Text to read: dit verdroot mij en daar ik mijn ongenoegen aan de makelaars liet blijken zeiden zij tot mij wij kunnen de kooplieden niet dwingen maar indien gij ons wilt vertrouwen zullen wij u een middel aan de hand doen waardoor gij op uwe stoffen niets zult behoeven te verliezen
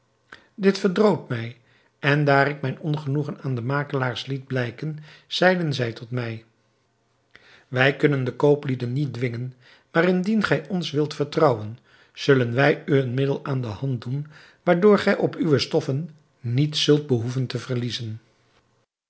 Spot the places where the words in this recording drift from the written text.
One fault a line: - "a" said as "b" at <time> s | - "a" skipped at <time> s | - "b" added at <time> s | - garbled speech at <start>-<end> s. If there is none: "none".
none